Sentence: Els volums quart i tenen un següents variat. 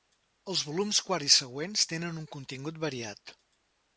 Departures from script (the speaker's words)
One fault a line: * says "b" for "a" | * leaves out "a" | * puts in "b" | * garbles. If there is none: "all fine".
* puts in "següents"
* says "contingut" for "següents"